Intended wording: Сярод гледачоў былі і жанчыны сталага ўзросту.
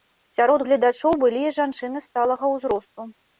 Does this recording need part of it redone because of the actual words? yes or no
no